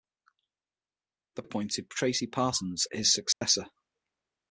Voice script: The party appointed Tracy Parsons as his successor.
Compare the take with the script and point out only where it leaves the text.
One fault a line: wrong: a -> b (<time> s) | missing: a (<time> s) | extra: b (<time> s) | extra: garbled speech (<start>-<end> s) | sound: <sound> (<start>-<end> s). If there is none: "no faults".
missing: party (1.4 s)
missing: as (2.9 s)
sound: dropout (3.3-3.4 s)